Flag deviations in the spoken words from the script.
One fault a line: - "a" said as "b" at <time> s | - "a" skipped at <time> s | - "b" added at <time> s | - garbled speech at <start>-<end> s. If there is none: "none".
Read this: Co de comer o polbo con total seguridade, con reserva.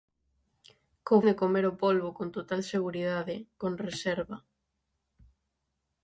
none